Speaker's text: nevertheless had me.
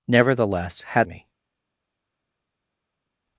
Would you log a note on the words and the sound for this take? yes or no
no